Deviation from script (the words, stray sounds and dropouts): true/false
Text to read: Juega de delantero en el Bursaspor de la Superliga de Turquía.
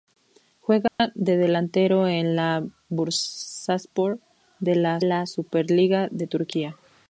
true